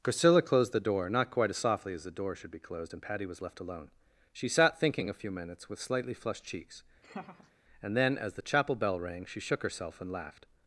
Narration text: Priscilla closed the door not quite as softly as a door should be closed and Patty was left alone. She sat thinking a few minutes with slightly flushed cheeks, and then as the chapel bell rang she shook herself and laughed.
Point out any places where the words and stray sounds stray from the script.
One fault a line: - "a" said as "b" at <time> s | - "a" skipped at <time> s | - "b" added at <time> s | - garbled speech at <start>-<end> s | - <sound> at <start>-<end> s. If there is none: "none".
- "a" said as "the" at 2.0 s
- laugh at 7.0-7.5 s